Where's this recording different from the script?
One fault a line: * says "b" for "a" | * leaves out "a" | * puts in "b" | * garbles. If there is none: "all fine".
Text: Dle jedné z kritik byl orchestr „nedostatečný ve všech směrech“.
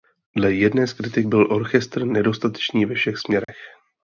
all fine